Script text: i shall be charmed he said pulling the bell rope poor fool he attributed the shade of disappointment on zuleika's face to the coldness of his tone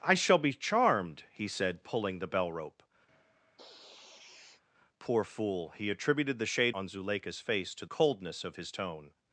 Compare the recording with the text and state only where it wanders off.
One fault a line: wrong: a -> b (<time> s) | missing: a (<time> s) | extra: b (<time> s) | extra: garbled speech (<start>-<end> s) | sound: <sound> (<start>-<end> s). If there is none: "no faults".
sound: sniff (3.1-4.6 s)
missing: of disappointment (6.7 s)
missing: the (7.8 s)